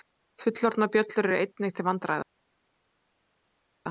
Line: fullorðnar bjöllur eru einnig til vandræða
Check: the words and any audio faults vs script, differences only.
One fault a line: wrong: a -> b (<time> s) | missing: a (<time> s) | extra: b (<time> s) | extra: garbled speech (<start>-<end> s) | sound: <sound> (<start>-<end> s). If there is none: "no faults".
no faults